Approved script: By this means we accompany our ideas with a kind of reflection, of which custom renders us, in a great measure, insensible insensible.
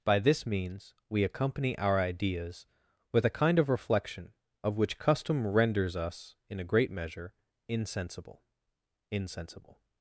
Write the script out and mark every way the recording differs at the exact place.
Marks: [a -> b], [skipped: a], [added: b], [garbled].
By this means we accompany our ideas with a kind of reflection, of which custom renders us, in a great measure, insensible insensible.